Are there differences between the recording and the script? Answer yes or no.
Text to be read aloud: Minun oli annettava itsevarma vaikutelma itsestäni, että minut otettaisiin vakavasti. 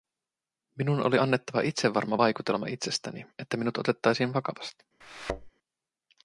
no